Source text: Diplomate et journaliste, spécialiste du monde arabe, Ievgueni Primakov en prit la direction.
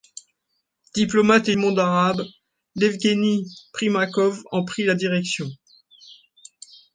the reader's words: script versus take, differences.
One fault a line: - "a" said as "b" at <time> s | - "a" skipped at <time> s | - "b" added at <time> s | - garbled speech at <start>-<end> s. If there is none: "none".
- "journaliste spécialiste du" skipped at 1.6 s